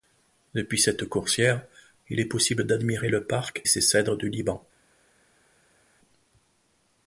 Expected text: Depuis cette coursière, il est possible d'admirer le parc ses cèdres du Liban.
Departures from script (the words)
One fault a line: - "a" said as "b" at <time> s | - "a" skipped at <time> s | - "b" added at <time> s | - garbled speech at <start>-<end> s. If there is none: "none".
none